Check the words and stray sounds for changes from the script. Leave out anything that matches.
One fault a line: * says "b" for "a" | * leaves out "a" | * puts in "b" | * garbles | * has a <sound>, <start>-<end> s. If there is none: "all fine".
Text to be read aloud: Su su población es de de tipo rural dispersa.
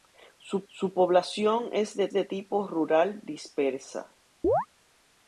* has a chirp, 4.4-4.7 s